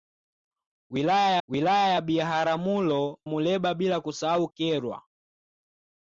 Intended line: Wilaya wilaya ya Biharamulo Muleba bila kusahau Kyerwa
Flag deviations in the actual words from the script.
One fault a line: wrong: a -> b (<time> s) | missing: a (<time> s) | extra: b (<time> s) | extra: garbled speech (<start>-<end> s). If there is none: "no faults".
no faults